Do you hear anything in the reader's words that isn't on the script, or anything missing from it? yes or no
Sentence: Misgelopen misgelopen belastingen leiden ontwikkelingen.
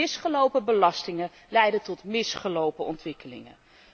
yes